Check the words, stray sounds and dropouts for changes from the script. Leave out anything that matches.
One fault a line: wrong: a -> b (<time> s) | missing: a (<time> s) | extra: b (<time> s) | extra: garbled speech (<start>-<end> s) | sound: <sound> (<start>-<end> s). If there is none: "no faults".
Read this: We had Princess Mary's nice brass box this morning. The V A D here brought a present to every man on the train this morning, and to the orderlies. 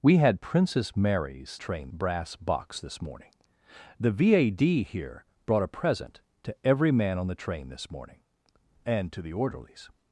wrong: nice -> train (1.6 s)